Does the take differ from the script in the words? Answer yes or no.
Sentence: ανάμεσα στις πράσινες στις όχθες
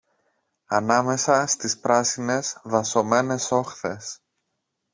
yes